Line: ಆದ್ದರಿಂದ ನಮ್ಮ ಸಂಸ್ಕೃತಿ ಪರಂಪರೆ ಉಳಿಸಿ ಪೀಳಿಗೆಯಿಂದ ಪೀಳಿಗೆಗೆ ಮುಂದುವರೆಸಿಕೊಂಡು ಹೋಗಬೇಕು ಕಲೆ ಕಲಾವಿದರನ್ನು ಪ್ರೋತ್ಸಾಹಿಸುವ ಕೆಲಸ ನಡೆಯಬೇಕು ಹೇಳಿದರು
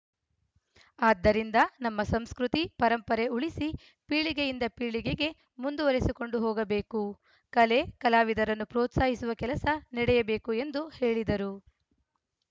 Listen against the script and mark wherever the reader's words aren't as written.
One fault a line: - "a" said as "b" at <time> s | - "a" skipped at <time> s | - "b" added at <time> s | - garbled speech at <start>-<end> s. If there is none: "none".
- "ಎಂದು" added at 10.6 s